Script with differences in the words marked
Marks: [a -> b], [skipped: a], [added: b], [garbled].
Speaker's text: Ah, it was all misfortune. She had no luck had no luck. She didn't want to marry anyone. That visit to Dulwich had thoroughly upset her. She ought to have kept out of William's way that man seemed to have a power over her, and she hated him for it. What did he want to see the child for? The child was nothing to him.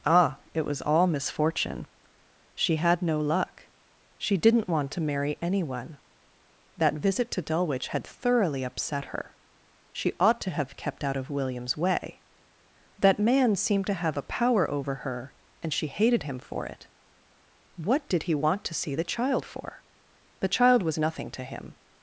Ah, it was all misfortune. She had no luck [skipped: had no luck.] She didn't want to marry anyone. That visit to Dulwich had thoroughly upset her. She ought to have kept out of William's way that man seemed to have a power over her, and she hated him for it. What did he want to see the child for? The child was nothing to him.